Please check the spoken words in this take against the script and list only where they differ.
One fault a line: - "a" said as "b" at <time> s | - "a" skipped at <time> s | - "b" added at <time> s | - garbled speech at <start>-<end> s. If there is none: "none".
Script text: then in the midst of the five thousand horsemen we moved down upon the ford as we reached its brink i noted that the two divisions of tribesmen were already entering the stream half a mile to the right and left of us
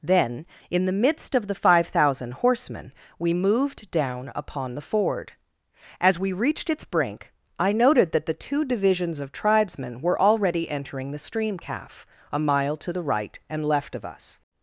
- "half" said as "calf" at 11.6 s